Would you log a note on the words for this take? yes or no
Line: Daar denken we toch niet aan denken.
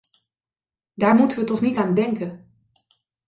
yes